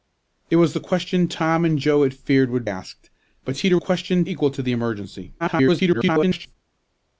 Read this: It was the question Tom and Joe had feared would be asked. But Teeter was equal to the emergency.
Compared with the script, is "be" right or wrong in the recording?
wrong